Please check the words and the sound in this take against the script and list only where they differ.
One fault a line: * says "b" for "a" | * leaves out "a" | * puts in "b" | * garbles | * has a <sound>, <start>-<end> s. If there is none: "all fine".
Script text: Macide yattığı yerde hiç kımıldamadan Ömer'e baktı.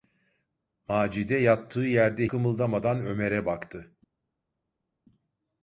* leaves out "hiç"